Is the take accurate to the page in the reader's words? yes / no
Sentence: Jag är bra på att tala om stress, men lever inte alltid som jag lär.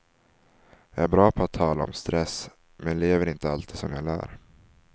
yes